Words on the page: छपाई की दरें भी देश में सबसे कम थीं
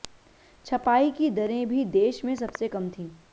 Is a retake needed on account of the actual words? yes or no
no